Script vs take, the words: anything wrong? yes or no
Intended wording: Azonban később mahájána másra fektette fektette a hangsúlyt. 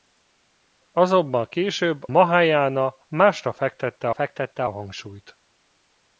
no